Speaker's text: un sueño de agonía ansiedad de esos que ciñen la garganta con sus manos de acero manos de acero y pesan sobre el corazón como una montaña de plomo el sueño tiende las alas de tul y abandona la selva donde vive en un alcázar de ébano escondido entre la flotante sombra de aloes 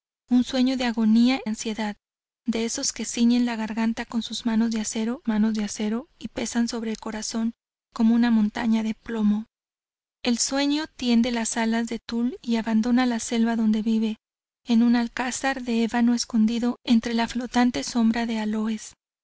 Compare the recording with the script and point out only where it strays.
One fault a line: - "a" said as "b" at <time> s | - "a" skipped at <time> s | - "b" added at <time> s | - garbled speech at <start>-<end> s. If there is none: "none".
none